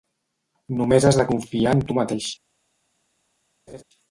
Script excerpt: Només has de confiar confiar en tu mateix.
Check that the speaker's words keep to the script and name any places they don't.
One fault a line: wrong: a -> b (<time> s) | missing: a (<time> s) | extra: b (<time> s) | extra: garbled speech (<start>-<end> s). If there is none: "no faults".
missing: confiar (1.7 s)